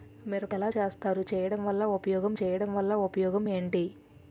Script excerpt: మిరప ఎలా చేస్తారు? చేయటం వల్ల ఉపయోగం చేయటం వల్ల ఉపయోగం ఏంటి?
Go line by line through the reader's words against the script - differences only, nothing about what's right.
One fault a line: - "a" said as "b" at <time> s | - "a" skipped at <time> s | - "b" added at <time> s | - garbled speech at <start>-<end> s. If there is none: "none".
none